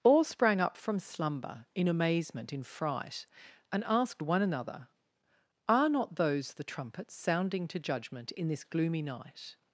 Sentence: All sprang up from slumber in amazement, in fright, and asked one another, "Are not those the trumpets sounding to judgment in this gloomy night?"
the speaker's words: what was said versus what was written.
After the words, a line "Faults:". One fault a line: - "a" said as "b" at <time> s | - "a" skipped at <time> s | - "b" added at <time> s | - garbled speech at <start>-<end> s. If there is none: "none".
All sprang up from slumber in amazement, in fright, and asked one another, "Are not those the trumpets sounding to judgment in this gloomy night?"
Faults:
none